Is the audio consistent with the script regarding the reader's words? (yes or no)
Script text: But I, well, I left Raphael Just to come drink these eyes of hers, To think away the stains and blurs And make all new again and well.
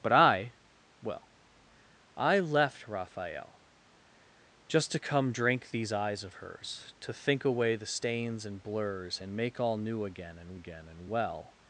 no